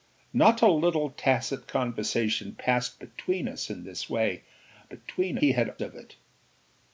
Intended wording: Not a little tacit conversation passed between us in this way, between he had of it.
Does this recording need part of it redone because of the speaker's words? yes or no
no